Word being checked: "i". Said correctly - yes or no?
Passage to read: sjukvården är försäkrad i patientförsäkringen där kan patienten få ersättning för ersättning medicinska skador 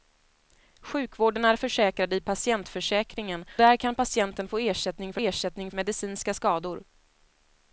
yes